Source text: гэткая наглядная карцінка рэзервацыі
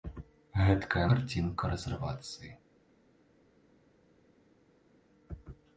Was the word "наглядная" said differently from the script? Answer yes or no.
yes